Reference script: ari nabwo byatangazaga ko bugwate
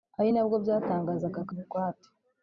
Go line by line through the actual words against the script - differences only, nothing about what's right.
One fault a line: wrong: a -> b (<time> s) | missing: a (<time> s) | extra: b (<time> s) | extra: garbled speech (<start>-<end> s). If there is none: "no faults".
no faults